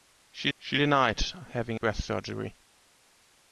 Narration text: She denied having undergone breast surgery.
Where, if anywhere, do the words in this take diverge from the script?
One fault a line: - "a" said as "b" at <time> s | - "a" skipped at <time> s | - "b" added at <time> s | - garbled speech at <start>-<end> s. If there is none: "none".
- "she" added at 0.6 s
- "undergone" skipped at 1.8 s